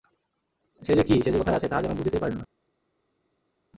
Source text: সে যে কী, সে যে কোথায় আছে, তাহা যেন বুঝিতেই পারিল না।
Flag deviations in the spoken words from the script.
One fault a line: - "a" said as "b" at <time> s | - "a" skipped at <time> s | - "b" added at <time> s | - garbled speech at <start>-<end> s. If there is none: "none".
none